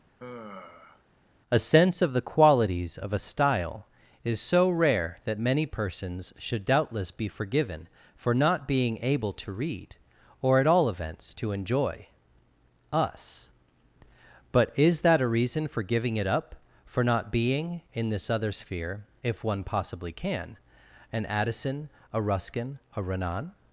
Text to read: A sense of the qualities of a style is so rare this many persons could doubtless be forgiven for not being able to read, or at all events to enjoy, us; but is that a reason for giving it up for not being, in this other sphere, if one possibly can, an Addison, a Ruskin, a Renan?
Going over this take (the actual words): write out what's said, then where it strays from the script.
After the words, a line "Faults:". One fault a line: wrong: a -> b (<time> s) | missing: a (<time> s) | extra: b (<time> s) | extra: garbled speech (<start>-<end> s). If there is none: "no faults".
A sense of the qualities of a style is so rare that many persons should doubtless be forgiven for not being able to read, or at all events to enjoy, us; but is that a reason for giving it up for not being, in this other sphere, if one possibly can, an Addison, a Ruskin, a Renan?
Faults:
wrong: this -> that (5.2 s)
wrong: could -> should (6.4 s)